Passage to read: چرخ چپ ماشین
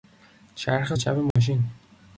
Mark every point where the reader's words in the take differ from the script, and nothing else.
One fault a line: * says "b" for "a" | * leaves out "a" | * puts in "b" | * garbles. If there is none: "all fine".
all fine